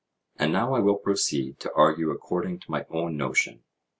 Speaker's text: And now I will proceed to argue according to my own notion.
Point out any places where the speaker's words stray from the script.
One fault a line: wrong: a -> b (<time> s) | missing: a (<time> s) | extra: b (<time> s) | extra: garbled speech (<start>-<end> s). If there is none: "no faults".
no faults